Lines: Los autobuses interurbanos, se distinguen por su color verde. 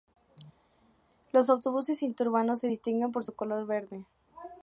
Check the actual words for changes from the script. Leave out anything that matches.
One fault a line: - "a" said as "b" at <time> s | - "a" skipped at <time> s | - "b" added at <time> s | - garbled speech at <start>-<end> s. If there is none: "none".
none